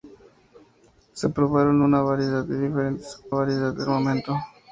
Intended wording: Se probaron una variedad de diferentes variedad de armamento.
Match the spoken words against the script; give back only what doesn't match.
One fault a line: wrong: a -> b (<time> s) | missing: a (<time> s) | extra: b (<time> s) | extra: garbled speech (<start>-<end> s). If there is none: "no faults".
no faults